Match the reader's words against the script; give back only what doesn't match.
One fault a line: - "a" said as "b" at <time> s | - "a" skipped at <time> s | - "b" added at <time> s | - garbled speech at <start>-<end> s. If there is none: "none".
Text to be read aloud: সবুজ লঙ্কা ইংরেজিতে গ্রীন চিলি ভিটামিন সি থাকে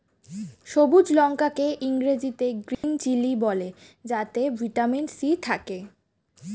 - "কে" added at 1.5 s
- "বলে যাতে" added at 3.4 s